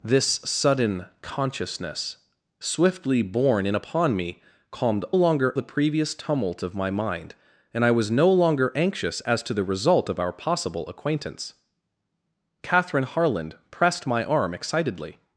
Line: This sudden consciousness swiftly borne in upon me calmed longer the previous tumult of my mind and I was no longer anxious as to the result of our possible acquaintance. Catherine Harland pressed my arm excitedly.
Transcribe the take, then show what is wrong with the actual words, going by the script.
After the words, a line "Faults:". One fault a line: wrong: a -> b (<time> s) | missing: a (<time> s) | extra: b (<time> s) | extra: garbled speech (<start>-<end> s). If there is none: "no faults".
This sudden consciousness swiftly borne in upon me calmed longer the previous tumult of my mind and I was no longer anxious as to the result of our possible acquaintance. Catherine Harland pressed my arm excitedly.
Faults:
no faults